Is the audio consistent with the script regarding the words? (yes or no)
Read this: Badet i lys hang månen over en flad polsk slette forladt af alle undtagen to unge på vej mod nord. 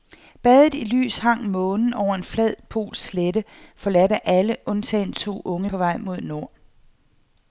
yes